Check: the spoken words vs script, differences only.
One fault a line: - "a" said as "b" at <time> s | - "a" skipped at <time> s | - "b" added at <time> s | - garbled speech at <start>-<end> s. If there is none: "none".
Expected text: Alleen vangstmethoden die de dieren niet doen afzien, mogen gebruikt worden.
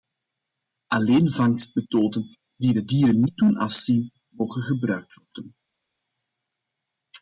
none